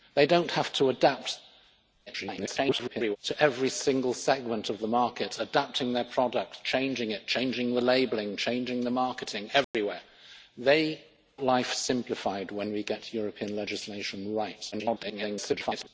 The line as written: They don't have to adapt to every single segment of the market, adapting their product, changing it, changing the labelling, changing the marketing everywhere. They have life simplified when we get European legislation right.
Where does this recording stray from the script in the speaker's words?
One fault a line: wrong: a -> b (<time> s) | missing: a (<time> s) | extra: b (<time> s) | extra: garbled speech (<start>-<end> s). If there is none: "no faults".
extra: garbled speech (2.1-3.2 s)
missing: have (11.0 s)
extra: garbled speech (14.7-15.9 s)